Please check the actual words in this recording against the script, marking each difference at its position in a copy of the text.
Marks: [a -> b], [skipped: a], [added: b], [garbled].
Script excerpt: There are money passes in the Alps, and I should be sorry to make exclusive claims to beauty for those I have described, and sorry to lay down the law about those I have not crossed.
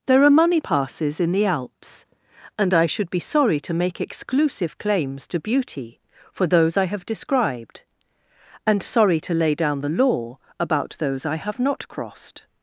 There are money passes in the Alps, and I should be sorry to make exclusive claims to beauty for those I have described, and sorry to lay down the law about those I have not crossed.